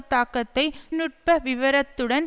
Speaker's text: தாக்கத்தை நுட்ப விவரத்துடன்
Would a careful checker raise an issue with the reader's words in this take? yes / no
no